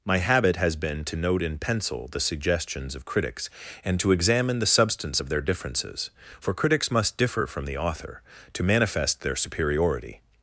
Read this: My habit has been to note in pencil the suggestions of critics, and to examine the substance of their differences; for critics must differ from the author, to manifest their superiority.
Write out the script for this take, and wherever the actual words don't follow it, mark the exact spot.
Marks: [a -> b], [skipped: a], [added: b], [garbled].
My habit has been to note in pencil the suggestions of critics, and to examine the substance of their differences; for critics must differ from the author, to manifest their superiority.